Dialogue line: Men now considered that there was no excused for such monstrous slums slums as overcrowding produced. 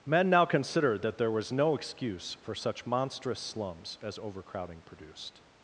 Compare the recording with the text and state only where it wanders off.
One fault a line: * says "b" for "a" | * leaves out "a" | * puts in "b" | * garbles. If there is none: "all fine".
* says "excuse" for "excused"
* leaves out "slums"